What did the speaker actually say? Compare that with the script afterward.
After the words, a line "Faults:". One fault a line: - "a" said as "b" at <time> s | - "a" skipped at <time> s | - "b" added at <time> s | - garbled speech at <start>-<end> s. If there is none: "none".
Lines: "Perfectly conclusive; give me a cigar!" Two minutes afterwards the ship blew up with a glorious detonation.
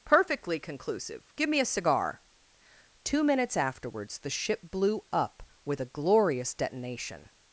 "Perfectly conclusive; give me a cigar!" Two minutes afterwards the ship blew up with a glorious detonation.
Faults:
none